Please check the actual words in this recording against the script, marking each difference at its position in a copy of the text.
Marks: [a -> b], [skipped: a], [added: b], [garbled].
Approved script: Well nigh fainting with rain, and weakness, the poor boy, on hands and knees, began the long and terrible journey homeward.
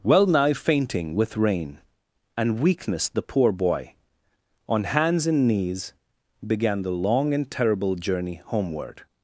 Well nigh fainting with rain, and weakness, the poor boy, on hands and knees, began the long and terrible journey homeward.